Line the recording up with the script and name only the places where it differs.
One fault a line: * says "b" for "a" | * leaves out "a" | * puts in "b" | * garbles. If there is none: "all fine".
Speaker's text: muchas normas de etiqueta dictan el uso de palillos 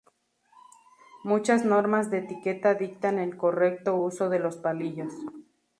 * puts in "correcto"
* puts in "los"